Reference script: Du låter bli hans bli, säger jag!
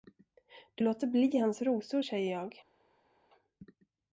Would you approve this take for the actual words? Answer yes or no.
no